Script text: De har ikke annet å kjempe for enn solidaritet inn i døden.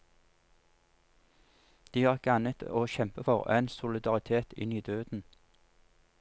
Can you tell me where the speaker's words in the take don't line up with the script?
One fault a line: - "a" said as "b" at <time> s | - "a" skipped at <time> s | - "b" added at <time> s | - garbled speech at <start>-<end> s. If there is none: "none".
none